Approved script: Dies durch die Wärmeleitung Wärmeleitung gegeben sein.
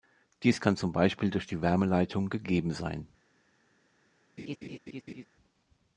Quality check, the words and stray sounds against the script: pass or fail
fail